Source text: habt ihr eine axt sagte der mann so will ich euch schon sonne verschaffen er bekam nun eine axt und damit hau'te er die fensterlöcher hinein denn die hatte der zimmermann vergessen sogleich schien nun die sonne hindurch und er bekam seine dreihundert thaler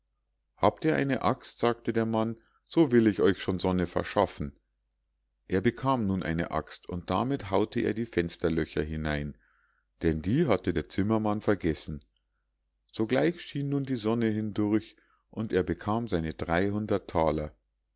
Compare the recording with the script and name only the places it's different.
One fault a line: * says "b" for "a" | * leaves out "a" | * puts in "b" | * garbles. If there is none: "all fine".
all fine